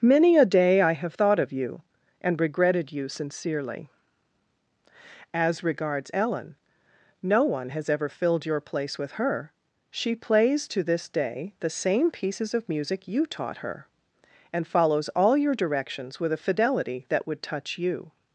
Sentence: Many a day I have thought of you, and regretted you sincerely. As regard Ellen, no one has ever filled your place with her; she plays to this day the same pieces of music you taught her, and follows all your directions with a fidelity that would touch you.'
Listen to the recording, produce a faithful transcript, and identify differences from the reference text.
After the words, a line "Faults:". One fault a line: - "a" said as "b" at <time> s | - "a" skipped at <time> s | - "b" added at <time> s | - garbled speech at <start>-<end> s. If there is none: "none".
Many a day I have thought of you, and regretted you sincerely. As regards Ellen, no one has ever filled your place with her; she plays to this day the same pieces of music you taught her, and follows all your directions with a fidelity that would touch you.'
Faults:
- "regard" said as "regards" at 5.6 s